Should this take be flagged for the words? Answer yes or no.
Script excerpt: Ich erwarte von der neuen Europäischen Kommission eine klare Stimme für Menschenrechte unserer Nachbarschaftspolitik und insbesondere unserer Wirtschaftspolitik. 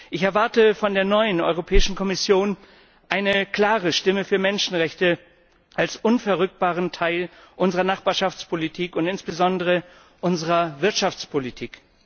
yes